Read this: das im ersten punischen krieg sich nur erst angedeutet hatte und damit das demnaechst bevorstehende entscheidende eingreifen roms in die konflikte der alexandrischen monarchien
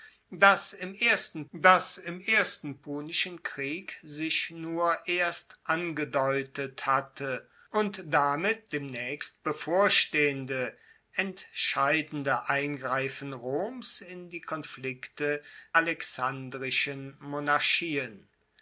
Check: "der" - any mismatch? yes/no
yes